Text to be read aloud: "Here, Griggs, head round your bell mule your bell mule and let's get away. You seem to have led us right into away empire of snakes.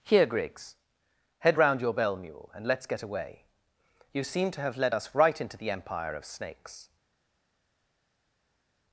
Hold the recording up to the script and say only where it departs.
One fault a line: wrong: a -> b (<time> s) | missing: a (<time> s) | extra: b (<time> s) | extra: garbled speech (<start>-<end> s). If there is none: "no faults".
missing: your bell mule (2.5 s)
wrong: away -> the (5.6 s)